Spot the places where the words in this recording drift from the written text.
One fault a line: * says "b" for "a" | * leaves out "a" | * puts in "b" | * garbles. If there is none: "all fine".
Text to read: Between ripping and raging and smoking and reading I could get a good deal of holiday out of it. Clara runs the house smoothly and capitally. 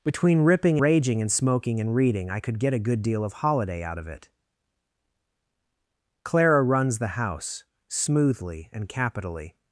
* leaves out "and"